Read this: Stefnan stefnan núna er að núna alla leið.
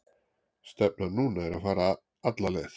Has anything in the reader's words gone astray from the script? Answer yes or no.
yes